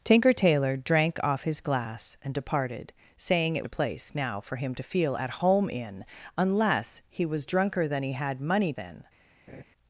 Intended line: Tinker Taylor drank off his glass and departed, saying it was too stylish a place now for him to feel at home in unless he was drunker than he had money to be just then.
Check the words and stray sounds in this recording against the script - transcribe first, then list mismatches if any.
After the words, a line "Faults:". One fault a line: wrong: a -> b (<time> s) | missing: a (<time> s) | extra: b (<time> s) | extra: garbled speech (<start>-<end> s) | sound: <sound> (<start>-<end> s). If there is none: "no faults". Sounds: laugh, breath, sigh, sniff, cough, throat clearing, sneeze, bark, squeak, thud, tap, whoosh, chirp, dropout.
Tinker Taylor drank off his glass and departed, saying it a place now for him to feel at home in unless he was drunker than he had money then.
Faults:
missing: was too stylish (3.7 s)
missing: to be just (8.7 s)
sound: laugh (9.5-9.6 s)